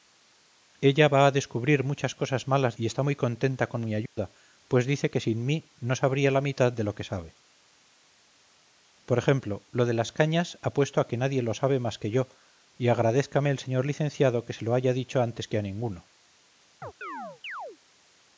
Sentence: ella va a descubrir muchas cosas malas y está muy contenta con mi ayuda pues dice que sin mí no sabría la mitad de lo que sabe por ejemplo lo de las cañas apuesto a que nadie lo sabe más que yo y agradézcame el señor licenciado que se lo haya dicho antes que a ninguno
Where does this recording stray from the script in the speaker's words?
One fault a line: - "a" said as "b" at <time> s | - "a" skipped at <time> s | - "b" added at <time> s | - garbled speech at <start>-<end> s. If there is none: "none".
none